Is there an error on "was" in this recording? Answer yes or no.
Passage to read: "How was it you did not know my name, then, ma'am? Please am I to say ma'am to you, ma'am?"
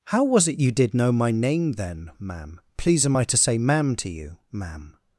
no